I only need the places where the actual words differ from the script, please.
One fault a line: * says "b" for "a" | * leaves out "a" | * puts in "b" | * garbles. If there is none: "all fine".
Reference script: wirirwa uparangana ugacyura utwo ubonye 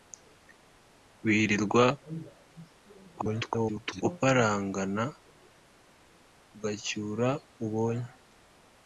* garbles
* leaves out "utwo"